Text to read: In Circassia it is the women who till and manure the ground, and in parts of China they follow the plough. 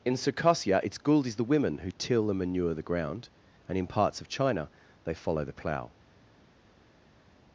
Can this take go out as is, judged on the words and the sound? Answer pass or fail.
fail